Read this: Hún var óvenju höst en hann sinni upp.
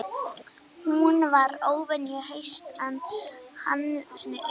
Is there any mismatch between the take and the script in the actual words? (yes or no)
no